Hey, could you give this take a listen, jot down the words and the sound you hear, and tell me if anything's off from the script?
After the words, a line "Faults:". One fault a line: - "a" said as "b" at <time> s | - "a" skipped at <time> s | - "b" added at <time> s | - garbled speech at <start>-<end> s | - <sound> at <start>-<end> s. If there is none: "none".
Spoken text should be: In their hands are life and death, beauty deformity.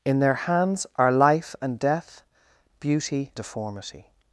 In their hands are life and death, beauty deformity.
Faults:
none